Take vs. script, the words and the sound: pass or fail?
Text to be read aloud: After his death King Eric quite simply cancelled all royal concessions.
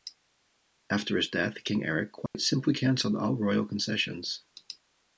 fail